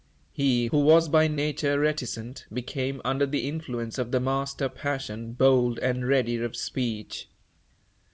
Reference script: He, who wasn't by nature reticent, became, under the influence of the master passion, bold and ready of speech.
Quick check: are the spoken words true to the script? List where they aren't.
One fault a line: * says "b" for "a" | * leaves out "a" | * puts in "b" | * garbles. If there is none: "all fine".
* says "was" for "wasn't"